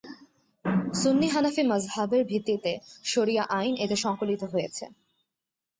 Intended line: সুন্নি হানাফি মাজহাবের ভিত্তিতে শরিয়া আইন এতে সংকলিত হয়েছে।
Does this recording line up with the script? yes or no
yes